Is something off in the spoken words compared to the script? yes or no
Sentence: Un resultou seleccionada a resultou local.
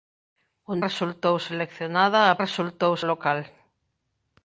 no